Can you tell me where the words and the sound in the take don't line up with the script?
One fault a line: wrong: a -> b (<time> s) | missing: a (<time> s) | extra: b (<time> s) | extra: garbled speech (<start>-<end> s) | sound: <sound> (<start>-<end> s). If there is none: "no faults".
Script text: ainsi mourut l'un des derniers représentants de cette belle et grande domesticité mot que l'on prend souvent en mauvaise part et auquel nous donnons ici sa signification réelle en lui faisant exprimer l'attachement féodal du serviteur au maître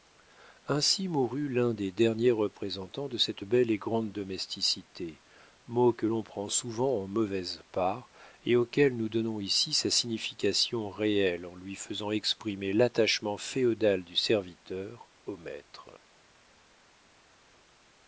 no faults